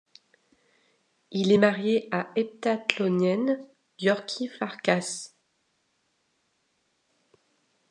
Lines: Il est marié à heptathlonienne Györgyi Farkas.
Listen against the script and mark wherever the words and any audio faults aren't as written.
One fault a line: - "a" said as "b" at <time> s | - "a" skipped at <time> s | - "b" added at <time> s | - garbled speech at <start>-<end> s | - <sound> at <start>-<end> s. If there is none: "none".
none